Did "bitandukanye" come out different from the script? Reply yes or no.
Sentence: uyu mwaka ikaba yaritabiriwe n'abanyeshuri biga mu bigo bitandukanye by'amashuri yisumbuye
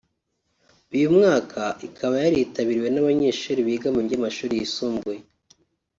yes